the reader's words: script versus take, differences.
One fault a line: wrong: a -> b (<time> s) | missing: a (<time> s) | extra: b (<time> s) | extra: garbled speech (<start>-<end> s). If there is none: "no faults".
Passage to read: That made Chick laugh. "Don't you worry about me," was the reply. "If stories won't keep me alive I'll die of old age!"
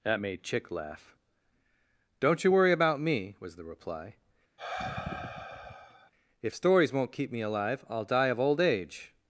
no faults